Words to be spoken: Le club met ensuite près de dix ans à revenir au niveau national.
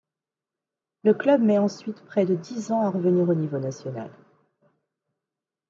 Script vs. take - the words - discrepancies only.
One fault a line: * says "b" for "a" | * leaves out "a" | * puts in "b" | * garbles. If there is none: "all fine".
all fine